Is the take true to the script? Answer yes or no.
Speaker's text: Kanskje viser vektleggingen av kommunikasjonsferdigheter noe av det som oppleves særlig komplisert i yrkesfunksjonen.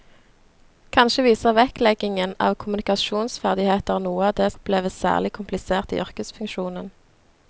no